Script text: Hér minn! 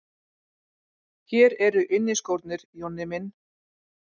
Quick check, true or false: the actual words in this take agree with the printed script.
false